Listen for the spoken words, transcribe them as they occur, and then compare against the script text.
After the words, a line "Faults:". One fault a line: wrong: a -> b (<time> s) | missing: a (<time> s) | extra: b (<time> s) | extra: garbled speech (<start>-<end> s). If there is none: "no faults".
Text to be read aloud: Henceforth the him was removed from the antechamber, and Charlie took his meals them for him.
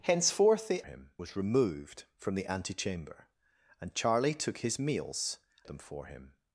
Henceforth the him was removed from the antechamber, and Charlie took his meals them for him.
Faults:
no faults